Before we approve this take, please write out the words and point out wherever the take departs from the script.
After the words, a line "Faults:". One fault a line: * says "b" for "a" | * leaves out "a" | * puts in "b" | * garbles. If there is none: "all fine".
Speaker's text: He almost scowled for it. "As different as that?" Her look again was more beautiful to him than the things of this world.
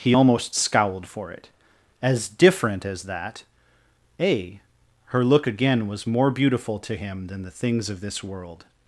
He almost scowled for it. "As different as that?" a Her look again was more beautiful to him than the things of this world.
Faults:
* puts in "a"